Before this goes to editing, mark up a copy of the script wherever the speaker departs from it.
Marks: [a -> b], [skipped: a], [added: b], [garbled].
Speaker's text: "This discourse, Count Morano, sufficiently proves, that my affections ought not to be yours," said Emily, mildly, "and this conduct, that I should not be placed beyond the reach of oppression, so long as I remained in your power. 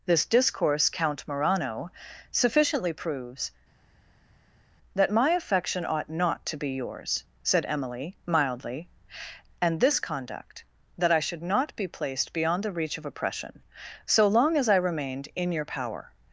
"This discourse, Count Morano, sufficiently proves, that my [affections -> affection] ought not to be yours," said Emily, mildly, "and this conduct, that I should not be placed beyond the reach of oppression, so long as I remained in your power.